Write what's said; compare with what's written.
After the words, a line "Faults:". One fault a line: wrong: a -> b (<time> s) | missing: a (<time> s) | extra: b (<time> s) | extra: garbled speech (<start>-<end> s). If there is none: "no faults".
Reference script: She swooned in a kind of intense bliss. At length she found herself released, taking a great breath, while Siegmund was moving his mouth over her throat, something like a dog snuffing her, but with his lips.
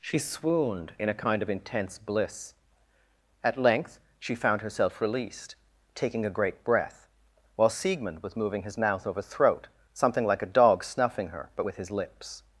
She swooned in a kind of intense bliss. At length she found herself released, taking a great breath, while Siegmund was moving his mouth over throat, something like a dog snuffing her, but with his lips.
Faults:
missing: her (9.2 s)